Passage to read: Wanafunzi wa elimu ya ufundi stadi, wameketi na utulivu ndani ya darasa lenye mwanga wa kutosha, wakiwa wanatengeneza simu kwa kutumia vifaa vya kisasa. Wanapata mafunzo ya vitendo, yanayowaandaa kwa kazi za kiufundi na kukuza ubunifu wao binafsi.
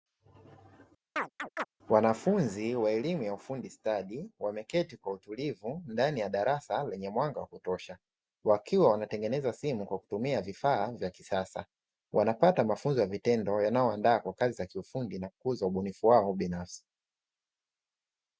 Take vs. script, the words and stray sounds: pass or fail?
fail